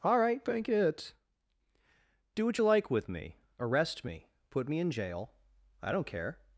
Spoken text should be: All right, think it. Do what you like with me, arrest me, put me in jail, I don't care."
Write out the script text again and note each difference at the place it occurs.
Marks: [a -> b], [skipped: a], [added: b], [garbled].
All right, [think -> bank] it. Do what you like with me, arrest me, put me in jail, I don't care."